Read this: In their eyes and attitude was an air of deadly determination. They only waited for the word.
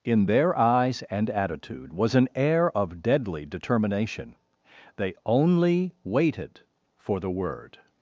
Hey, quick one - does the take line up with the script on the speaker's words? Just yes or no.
yes